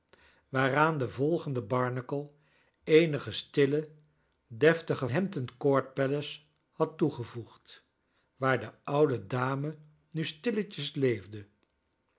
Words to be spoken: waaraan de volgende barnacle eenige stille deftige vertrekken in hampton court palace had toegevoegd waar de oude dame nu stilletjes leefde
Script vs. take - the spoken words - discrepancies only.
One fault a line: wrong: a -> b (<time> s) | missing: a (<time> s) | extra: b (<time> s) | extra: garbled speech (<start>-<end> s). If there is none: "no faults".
missing: vertrekken in (5.1 s)